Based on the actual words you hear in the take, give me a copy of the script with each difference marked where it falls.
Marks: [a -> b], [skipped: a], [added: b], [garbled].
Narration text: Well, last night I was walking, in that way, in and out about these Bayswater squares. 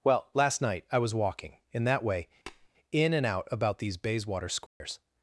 Well, last night I was walking, in that way, in and out about these Bayswater squares.